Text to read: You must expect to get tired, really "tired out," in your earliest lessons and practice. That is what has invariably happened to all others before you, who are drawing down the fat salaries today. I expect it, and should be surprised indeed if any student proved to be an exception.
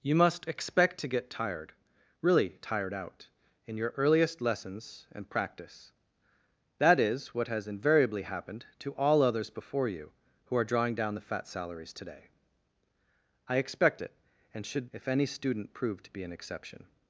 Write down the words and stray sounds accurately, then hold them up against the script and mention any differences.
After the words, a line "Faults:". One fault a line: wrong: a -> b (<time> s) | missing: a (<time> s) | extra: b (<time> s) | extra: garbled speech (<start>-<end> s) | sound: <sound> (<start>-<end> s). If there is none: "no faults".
You must expect to get tired, really "tired out," in your earliest lessons and practice. That is what has invariably happened to all others before you, who are drawing down the fat salaries today. I expect it, and should if any student proved to be an exception.
Faults:
missing: be surprised indeed (14.9 s)